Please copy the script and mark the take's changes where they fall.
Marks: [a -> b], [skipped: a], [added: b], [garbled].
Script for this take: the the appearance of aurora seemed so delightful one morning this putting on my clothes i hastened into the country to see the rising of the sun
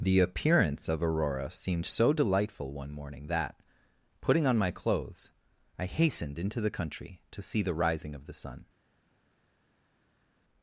the [skipped: the] appearance of aurora seemed so delightful one morning [this -> that] putting on my clothes i hastened into the country to see the rising of the sun